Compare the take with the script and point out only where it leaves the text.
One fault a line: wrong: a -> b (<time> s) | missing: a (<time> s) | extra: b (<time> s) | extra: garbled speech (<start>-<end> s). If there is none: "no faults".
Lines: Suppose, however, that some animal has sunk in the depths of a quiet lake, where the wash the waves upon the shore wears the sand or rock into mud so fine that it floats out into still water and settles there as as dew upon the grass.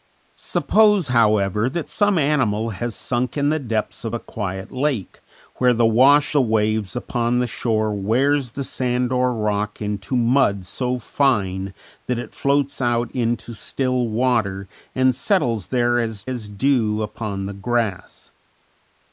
no faults